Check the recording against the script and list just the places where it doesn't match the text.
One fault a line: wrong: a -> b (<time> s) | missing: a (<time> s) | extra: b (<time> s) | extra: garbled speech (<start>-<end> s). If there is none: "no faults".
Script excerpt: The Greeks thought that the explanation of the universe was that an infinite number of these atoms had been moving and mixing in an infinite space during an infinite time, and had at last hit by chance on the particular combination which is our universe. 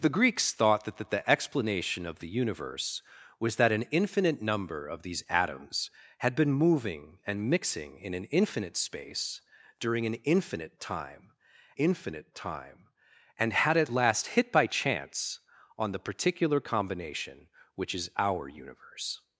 extra: that (1.0 s)
extra: infinite time (11.8 s)